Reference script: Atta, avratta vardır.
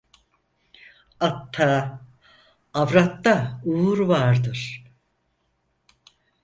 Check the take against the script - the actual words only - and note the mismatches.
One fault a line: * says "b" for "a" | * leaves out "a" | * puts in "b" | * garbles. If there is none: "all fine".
* puts in "uğur"